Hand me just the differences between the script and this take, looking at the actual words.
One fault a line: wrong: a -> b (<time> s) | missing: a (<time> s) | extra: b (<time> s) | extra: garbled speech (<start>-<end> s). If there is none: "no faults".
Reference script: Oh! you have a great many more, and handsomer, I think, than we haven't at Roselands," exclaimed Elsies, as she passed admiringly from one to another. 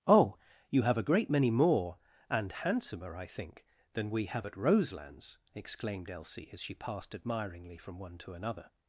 wrong: haven't -> have (4.2 s)
wrong: Elsies -> Elsie (6.1 s)